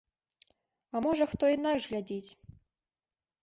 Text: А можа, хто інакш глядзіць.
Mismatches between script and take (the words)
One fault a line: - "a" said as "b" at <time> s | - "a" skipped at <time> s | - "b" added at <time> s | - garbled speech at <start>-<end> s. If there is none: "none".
none